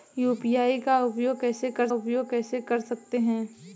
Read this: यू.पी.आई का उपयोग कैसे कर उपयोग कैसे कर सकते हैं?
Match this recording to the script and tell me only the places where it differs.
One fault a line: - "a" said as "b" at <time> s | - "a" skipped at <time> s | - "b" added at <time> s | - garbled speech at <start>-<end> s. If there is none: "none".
none